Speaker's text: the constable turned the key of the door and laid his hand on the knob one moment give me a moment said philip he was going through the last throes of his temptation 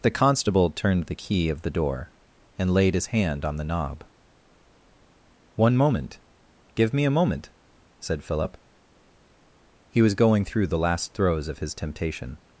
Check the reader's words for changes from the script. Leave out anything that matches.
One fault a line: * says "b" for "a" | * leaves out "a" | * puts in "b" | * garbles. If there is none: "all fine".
all fine